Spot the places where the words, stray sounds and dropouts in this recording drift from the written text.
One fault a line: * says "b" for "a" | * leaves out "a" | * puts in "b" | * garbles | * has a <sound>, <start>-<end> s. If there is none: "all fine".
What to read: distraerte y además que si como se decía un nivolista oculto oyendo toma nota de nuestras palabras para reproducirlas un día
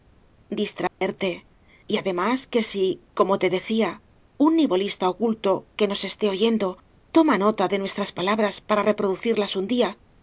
* has a dropout, 0.9-1.0 s
* says "te" for "se"
* puts in "que nos esté"